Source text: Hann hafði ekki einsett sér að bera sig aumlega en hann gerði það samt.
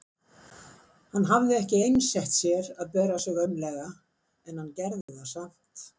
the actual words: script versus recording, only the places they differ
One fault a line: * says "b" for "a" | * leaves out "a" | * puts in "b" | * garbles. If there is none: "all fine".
all fine